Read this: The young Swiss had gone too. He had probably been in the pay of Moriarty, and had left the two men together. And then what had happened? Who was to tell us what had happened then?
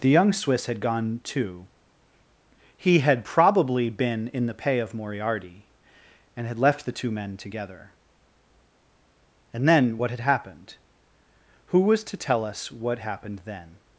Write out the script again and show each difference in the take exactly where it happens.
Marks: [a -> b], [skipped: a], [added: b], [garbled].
The young Swiss had gone too. He had probably been in the pay of Moriarty, and had left the two men together. And then what had happened? Who was to tell us what [skipped: had] happened then?